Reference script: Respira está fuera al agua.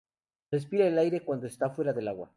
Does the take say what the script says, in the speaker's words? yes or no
no